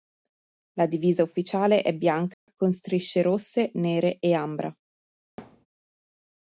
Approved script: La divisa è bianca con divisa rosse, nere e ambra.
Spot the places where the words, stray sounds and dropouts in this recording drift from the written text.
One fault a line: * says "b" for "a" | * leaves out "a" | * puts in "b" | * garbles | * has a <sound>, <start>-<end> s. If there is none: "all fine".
* puts in "ufficiale"
* has a dropout, 2.3-2.5 s
* says "strisce" for "divisa"
* has a thud, 5.4-5.7 s